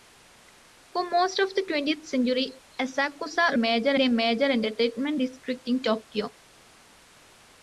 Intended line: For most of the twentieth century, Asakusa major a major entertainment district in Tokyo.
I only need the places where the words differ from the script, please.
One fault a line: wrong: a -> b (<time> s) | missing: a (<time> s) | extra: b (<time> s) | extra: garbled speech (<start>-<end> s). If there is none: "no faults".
no faults